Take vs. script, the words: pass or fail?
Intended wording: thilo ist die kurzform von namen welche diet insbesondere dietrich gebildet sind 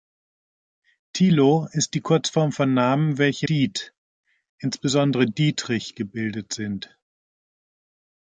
pass